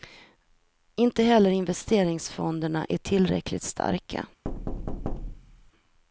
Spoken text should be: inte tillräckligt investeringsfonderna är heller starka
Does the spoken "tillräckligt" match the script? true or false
false